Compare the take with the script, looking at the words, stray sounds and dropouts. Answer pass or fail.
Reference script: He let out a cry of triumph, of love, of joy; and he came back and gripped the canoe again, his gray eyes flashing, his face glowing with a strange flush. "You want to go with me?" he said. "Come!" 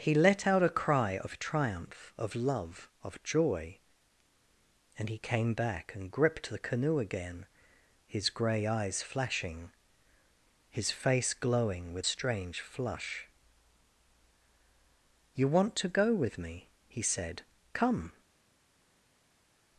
fail